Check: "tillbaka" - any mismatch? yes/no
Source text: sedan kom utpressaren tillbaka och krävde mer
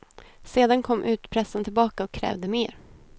no